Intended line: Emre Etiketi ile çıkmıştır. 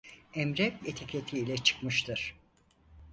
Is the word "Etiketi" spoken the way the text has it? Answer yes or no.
yes